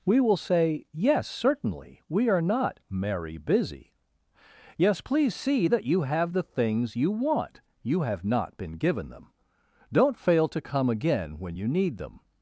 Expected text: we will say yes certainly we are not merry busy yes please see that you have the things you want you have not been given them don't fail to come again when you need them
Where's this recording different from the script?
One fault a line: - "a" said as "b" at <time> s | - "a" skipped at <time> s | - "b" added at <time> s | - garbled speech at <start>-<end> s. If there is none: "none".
none